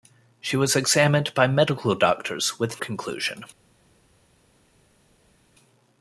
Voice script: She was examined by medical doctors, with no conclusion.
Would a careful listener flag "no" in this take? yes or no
yes